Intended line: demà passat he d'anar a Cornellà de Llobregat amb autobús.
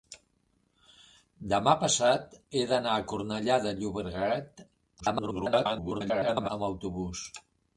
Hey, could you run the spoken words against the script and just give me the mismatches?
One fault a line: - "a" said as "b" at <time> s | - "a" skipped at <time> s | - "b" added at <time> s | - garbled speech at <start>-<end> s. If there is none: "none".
- garbled speech at 5.0-6.5 s